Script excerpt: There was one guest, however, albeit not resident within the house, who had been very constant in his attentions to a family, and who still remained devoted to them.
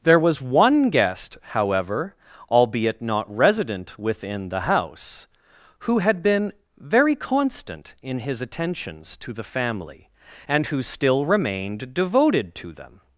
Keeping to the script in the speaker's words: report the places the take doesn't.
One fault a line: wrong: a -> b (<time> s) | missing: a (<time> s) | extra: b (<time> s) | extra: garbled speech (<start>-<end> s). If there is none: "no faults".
wrong: a -> the (9.3 s)